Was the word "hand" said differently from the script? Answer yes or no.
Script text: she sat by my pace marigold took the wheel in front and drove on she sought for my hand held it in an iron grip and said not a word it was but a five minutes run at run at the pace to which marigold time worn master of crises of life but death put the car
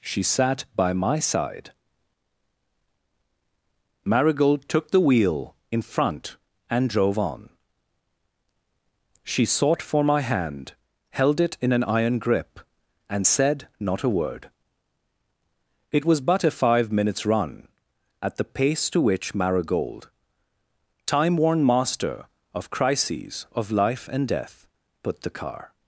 no